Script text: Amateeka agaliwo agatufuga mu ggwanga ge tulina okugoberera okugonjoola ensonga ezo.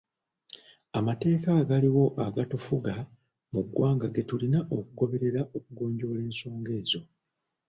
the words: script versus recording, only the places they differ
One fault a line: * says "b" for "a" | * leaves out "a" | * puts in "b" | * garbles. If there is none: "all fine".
all fine